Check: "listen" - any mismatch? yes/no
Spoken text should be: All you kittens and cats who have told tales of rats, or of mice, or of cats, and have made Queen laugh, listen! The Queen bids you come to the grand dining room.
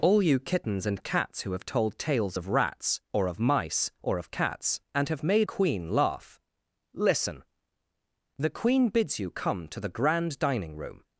no